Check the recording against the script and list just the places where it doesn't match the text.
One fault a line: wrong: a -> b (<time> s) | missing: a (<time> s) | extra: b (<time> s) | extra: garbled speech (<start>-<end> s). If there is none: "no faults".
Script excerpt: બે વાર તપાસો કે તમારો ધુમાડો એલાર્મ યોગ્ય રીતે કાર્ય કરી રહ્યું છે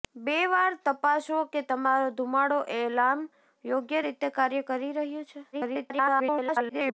extra: garbled speech (5.5-6.9 s)